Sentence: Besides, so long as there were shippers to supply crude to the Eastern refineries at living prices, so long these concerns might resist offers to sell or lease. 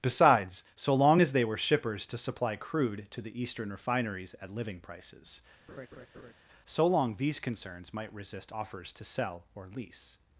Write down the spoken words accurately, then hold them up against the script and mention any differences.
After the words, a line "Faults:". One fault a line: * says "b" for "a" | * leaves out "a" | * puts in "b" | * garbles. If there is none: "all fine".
Besides, so long as they were shippers to supply crude to the Eastern refineries at living prices, so long these concerns might resist offers to sell or lease.
Faults:
* says "they" for "there"